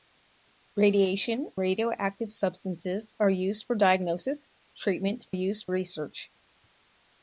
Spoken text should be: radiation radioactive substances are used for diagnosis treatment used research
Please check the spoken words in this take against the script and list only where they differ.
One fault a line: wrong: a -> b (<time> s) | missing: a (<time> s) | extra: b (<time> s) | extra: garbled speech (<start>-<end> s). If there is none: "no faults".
no faults